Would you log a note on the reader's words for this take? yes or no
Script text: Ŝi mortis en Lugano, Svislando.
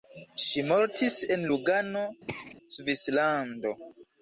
no